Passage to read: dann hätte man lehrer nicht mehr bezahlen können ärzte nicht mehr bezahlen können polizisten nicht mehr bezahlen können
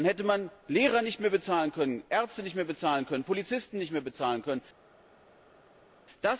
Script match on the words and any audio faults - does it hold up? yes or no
yes